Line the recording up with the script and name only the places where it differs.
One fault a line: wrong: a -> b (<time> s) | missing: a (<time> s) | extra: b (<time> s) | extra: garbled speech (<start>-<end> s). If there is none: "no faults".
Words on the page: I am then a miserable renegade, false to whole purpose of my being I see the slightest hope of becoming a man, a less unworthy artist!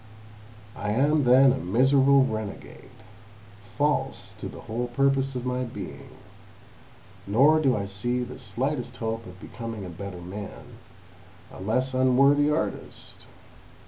extra: the (4.5 s)
extra: nor do (7.3 s)
extra: better (9.9 s)